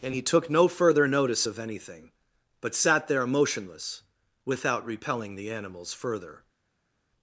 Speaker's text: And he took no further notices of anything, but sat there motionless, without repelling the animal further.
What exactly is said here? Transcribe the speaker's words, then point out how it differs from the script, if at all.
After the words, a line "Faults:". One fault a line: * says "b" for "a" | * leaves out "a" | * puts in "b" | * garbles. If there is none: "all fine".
And he took no further notice of anything, but sat there motionless, without repelling the animals further.
Faults:
* says "notice" for "notices"
* says "animals" for "animal"